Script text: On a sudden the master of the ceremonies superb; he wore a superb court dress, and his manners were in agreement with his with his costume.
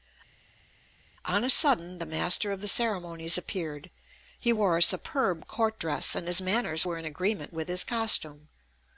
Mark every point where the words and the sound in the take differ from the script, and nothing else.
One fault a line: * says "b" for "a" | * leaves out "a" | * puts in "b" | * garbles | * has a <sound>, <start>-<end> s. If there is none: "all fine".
* says "appeared" for "superb"
* leaves out "with his"